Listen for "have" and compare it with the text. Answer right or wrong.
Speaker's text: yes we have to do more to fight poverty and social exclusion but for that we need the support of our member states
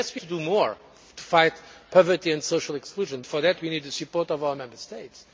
wrong